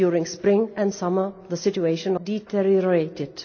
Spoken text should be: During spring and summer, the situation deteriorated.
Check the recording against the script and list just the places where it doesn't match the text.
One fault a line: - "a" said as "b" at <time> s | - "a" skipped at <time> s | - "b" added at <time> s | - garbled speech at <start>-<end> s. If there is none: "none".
none